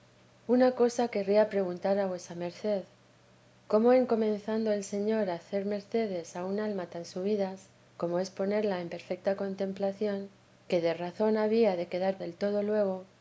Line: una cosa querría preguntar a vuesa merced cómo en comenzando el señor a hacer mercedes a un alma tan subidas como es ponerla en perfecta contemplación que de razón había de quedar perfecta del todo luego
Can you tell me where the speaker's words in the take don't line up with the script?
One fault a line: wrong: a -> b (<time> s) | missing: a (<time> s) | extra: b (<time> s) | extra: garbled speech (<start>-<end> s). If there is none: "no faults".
missing: perfecta (12.2 s)